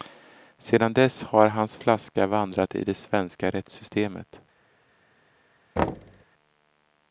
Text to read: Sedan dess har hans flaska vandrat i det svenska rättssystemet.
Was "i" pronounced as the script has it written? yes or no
yes